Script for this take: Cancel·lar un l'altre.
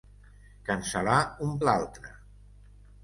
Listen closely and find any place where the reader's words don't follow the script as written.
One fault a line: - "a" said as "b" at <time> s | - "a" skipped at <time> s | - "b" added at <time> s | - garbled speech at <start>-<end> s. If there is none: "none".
none